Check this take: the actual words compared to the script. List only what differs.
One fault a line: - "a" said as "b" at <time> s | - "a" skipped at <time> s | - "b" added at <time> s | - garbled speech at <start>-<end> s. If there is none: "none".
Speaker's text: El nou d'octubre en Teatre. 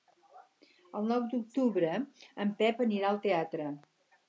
- "Pep anirà al" added at 2.6 s